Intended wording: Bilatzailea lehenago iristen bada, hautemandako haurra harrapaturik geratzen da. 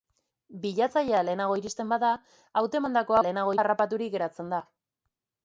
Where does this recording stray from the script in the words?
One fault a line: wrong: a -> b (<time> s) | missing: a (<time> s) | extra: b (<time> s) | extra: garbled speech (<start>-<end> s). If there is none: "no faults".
wrong: haurra -> lehenago (3.2 s)